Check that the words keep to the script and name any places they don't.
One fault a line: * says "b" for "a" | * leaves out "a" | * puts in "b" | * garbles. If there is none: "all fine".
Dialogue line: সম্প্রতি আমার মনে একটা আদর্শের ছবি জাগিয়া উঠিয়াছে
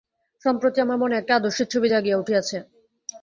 all fine